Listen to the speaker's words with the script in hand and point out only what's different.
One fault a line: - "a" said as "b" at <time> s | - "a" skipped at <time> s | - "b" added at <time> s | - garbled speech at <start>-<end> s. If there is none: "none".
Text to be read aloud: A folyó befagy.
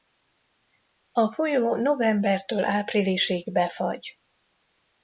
- "novembertől áprilisig" added at 1.8 s